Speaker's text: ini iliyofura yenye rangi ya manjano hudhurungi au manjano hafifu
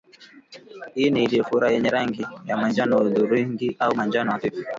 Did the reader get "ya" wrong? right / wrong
right